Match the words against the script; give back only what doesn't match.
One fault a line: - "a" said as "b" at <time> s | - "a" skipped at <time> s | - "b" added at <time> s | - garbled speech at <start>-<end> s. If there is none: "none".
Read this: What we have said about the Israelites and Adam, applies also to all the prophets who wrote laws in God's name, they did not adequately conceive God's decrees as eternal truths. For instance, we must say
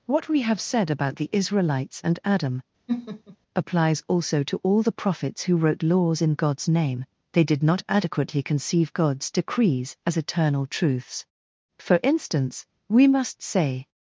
none